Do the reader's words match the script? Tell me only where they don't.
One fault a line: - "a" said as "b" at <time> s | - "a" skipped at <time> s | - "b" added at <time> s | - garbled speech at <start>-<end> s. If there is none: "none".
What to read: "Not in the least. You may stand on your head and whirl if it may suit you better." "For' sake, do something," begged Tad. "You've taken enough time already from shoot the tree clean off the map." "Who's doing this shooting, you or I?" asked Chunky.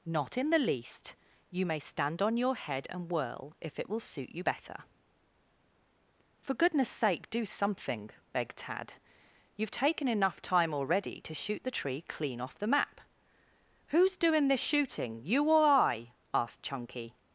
- "may" said as "will" at 3.9 s
- "goodness" added at 6.5 s
- "from" said as "to" at 11.2 s